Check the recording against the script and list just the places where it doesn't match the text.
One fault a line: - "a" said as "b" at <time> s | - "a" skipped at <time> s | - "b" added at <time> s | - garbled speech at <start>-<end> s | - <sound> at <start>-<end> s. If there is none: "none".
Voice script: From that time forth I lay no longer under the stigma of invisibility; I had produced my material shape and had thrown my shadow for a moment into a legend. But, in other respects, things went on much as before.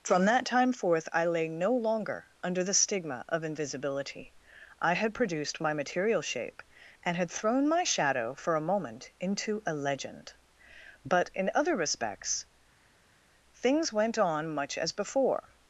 none